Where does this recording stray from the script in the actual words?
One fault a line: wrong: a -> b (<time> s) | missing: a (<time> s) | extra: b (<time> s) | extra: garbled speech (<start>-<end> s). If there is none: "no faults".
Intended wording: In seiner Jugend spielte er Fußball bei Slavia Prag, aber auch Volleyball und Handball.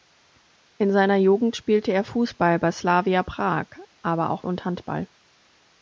missing: Volleyball (4.5 s)